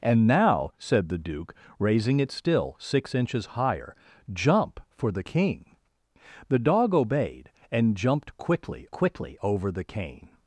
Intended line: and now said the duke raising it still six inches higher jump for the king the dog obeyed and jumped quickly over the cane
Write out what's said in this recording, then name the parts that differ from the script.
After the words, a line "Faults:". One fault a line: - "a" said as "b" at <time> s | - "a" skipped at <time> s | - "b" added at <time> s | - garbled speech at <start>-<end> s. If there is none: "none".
and now said the duke raising it still six inches higher jump for the king the dog obeyed and jumped quickly quickly over the cane
Faults:
- "quickly" added at 8.9 s